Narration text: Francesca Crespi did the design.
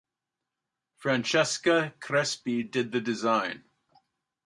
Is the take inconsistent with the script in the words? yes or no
no